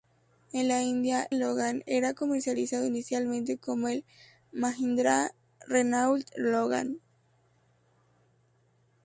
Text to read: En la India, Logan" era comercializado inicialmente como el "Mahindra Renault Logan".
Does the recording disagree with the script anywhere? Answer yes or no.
no